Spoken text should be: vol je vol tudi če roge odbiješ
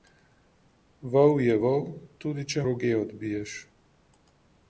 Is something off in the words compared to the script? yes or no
no